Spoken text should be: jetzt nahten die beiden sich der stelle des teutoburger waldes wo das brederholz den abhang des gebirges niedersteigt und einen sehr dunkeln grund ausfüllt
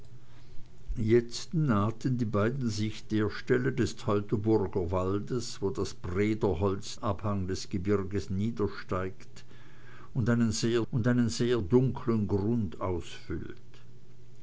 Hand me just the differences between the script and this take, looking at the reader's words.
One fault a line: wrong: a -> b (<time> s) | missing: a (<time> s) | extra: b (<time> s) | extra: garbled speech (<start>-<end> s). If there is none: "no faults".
missing: den (7.0 s)
extra: und einen sehr (10.9 s)